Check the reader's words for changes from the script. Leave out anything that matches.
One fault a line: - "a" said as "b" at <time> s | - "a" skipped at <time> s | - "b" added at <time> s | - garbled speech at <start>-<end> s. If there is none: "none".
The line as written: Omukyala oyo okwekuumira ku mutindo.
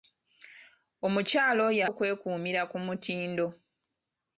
none